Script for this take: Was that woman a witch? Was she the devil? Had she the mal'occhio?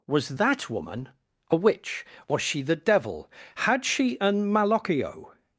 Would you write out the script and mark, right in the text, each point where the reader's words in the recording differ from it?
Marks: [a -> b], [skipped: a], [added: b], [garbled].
Was that woman a witch? Was she the devil? Had she [the -> an] mal'occhio?